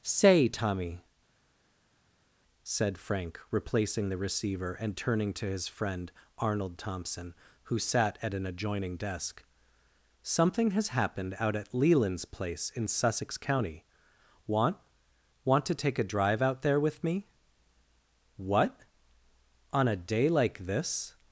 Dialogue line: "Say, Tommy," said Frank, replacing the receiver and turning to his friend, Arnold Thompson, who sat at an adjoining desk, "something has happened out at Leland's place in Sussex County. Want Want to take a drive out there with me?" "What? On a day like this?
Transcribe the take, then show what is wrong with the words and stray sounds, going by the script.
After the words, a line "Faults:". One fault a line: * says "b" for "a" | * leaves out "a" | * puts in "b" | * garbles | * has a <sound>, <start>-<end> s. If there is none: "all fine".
"Say, Tommy," said Frank, replacing the receiver and turning to his friend, Arnold Thompson, who sat at an adjoining desk, "something has happened out at Leland's place in Sussex County. Want Want to take a drive out there with me?" "What? On a day like this?
Faults:
all fine